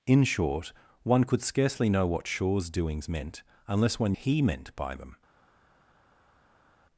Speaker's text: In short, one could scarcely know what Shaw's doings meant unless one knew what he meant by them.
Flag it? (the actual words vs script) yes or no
yes